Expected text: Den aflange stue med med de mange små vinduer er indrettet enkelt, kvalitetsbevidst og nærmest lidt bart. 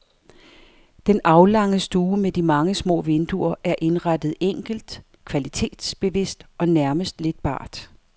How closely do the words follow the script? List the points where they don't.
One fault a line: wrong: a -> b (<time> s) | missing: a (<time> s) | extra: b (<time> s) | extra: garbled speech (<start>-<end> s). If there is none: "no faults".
missing: med (2.3 s)